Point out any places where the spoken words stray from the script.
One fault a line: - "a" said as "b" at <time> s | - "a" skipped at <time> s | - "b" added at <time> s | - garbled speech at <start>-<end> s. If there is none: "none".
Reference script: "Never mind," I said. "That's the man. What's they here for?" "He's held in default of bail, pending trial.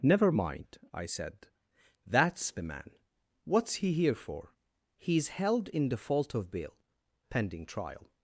- "they" said as "he" at 3.8 s